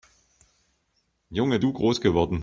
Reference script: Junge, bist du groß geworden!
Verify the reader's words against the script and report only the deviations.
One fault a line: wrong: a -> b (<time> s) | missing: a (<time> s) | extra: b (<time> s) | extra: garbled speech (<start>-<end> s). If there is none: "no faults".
missing: bist (1.6 s)